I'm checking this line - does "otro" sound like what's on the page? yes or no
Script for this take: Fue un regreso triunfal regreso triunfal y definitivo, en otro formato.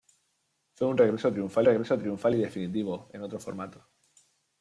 yes